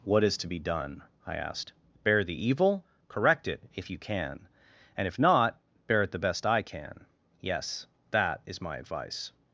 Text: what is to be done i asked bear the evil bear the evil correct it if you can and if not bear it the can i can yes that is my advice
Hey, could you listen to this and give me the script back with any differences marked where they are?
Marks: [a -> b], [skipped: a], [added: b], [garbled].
what is to be done i asked bear the evil [skipped: bear the evil] correct it if you can and if not bear it the [can -> best] i can yes that is my advice